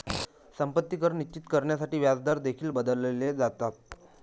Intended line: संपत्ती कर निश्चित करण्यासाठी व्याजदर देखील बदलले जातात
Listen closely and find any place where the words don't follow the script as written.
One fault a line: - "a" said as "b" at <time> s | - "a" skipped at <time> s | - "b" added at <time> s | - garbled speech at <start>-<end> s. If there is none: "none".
none